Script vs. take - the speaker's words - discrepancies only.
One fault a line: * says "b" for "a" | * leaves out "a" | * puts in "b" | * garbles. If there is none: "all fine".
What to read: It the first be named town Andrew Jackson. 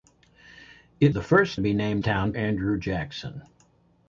all fine